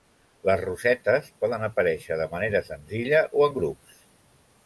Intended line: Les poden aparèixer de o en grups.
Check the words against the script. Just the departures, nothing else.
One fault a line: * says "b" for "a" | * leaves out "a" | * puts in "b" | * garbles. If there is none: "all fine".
* puts in "rosetes"
* puts in "manera senzilla"